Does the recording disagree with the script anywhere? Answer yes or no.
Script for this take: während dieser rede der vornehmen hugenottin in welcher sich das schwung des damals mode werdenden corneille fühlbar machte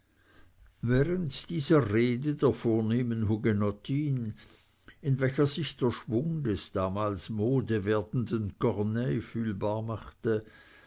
yes